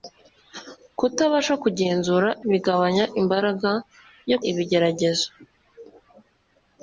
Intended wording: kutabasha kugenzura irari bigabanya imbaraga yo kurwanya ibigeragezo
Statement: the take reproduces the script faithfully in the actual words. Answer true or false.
false